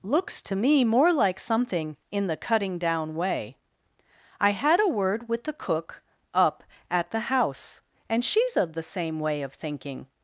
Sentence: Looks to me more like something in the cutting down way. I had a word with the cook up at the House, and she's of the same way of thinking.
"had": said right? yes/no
yes